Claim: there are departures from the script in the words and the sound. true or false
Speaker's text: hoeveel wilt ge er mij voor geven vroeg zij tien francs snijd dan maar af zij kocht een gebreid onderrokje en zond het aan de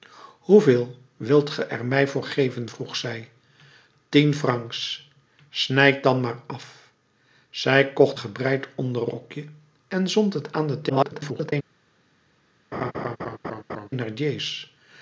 true